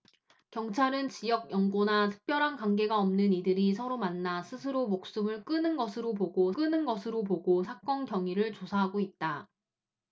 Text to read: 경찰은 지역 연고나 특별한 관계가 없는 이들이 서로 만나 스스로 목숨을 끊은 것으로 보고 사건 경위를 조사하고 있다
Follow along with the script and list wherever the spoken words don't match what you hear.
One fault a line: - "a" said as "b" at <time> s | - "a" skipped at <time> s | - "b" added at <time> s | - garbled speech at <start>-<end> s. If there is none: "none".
- "끊은 것으로 보고" added at 6.5 s